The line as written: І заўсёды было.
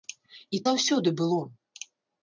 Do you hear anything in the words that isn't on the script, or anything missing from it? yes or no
no